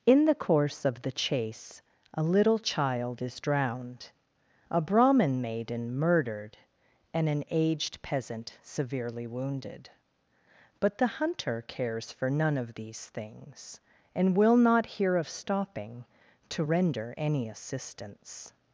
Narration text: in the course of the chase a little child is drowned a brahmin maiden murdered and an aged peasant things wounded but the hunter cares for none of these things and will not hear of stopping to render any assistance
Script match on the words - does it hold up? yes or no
no